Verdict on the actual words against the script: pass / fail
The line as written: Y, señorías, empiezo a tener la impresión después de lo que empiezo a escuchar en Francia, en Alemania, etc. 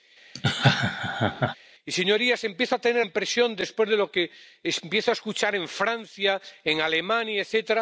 fail